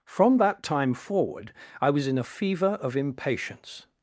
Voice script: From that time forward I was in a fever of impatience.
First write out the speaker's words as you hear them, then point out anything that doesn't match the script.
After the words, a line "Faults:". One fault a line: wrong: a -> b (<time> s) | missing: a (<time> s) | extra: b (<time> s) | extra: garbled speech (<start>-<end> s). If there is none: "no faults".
From that time forward I was in a fever of impatience.
Faults:
no faults